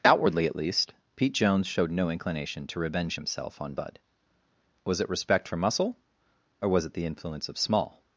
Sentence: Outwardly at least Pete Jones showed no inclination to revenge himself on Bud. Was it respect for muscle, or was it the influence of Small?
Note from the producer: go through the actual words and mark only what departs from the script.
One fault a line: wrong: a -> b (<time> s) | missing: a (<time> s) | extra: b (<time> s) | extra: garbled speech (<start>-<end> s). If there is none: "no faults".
no faults